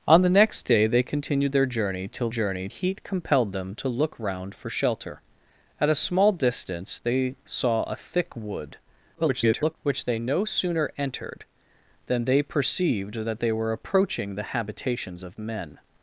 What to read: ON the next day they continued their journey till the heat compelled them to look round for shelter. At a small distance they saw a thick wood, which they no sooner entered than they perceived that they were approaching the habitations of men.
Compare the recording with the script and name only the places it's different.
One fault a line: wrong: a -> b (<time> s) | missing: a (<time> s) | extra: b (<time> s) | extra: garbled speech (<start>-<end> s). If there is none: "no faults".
wrong: the -> journey (2.3 s)
extra: garbled speech (9.1-9.8 s)